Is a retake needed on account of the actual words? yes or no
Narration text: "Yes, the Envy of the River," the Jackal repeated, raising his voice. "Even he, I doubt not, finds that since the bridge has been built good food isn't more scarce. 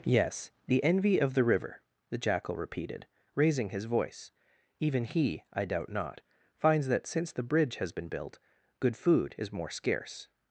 yes